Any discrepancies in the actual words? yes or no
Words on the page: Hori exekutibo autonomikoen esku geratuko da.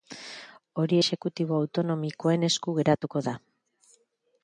no